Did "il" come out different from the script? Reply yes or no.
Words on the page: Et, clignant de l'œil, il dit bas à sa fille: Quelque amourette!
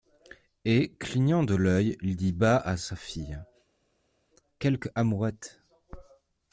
no